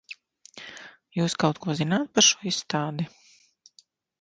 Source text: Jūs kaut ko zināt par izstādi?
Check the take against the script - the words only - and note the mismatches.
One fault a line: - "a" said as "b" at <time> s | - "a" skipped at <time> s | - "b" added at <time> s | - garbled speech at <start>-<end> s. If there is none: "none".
- "šo" added at 2.3 s